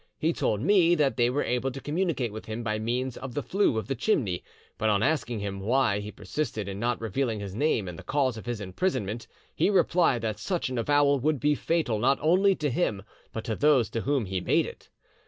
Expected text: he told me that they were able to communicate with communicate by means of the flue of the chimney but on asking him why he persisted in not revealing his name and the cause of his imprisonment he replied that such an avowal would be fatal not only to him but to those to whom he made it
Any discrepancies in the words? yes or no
yes